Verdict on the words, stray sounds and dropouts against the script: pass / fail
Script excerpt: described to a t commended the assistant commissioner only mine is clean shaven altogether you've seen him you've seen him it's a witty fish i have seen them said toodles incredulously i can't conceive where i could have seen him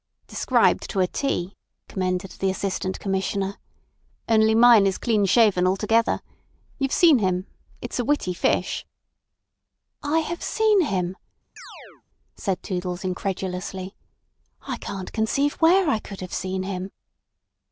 fail